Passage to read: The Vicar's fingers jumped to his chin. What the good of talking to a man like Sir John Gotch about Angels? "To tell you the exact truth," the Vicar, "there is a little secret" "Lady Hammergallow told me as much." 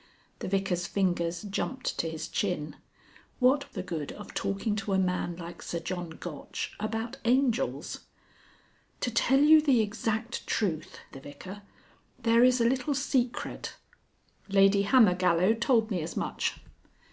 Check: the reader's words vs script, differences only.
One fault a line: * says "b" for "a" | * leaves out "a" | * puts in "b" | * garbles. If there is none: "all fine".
all fine